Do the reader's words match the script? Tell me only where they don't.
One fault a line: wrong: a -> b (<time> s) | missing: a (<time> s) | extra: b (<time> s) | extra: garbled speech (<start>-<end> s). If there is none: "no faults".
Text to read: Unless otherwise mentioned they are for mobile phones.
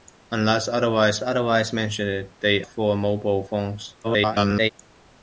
extra: otherwise (1.2 s)
missing: are (2.6 s)
extra: garbled speech (4.0-4.7 s)